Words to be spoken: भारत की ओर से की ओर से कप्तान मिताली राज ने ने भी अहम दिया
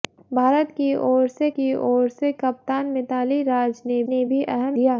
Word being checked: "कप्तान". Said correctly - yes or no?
yes